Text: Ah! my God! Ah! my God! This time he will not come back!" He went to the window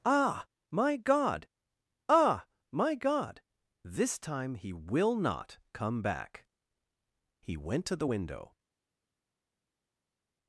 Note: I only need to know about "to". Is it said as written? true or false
true